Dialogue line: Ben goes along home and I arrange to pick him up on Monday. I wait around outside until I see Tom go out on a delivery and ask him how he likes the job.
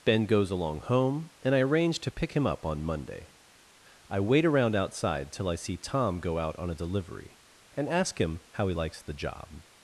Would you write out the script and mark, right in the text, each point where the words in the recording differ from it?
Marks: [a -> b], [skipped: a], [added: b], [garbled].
Ben goes along home and I arrange to pick him up on Monday. I wait around outside [until -> till] I see Tom go out on a delivery and ask him how he likes the job.